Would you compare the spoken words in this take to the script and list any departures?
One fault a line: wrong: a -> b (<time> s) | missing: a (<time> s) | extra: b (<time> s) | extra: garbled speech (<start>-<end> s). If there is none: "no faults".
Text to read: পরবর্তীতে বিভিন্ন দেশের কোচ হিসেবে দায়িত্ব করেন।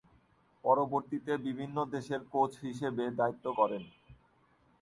no faults